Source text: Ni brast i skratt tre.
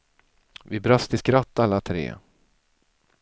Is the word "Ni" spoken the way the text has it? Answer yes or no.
no